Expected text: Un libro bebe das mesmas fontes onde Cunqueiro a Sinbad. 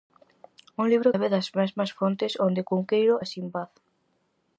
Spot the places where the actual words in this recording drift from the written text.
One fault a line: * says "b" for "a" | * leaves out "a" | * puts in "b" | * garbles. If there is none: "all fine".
all fine